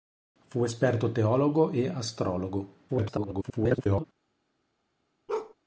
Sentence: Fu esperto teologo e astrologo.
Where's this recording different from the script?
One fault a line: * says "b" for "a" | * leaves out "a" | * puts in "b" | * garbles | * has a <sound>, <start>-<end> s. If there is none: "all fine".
* garbles
* has a bark, 5.3-5.5 s